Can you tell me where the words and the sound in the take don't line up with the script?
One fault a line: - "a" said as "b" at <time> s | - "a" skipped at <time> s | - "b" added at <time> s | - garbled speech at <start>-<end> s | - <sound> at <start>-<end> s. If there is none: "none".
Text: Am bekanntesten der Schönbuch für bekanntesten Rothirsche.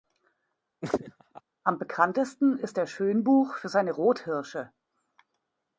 - laugh at 0.8-1.4 s
- "ist" added at 2.6 s
- "bekanntesten" said as "seine" at 3.7 s